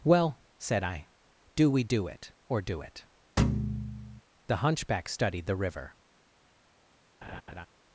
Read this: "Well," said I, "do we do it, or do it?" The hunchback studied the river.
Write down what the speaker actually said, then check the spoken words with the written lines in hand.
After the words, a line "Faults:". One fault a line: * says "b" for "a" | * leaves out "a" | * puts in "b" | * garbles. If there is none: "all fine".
"Well," said I, "do we do it, or do it?" The hunchback studied the river.
Faults:
all fine